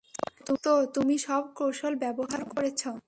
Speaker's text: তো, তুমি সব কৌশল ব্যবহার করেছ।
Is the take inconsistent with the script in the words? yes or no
no